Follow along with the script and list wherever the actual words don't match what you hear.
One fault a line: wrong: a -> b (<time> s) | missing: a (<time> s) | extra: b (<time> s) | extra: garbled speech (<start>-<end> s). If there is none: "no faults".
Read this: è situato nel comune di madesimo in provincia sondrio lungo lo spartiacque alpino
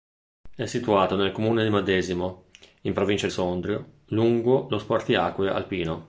no faults